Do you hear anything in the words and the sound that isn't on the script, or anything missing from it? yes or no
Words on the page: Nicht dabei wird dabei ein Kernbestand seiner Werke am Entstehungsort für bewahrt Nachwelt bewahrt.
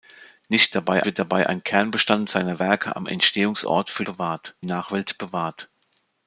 no